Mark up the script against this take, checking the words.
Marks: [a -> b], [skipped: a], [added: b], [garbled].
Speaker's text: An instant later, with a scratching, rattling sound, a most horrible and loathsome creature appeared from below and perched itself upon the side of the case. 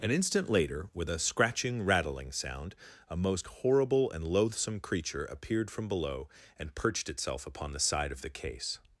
An instant later, with a scratching, rattling sound, a most horrible and loathsome creature appeared from below and perched itself upon the side of the case.